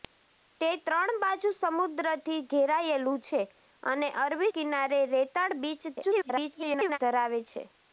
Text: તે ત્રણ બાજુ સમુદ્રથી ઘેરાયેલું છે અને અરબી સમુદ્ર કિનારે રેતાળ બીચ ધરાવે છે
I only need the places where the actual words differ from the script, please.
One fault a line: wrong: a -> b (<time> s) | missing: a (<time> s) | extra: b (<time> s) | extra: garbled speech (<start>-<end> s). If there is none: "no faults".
missing: સમુદ્ર (4.5 s)
extra: garbled speech (6.0-7.0 s)